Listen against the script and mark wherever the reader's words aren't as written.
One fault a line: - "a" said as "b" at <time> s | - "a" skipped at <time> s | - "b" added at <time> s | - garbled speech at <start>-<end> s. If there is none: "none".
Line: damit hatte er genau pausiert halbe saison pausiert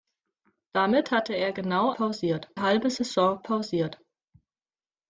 none